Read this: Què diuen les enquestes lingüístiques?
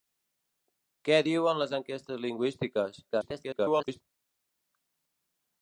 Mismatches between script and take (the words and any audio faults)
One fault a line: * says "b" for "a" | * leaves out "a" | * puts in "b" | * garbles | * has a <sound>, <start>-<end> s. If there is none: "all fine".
* garbles